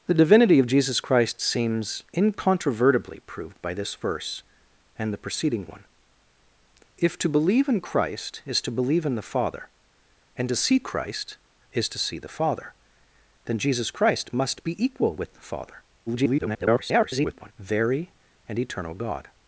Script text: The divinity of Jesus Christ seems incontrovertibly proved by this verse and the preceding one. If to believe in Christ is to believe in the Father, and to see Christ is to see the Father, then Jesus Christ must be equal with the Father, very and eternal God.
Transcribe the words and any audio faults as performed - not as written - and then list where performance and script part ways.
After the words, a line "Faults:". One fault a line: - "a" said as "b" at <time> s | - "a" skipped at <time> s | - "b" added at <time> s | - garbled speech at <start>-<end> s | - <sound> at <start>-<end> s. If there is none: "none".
The divinity of Jesus Christ seems incontrovertibly proved by this verse and the preceding one. If to believe in Christ is to believe in the Father, and to see Christ is to see the Father, then Jesus Christ must be equal with the Father, [garbled] very and eternal God.
Faults:
- garbled speech at 16.1-17.5 s